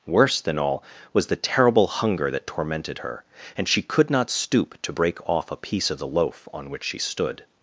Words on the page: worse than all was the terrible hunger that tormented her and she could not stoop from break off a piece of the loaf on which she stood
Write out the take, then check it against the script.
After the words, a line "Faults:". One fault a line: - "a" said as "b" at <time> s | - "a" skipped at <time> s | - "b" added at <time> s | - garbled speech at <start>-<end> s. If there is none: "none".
worse than all was the terrible hunger that tormented her and she could not stoop to break off a piece of the loaf on which she stood
Faults:
- "from" said as "to" at 4.8 s